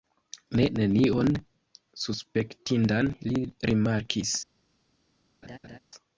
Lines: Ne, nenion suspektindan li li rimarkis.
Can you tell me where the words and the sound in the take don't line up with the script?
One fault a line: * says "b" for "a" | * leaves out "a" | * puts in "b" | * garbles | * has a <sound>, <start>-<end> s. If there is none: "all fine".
* leaves out "li"
* has a laugh, 5.4-5.8 s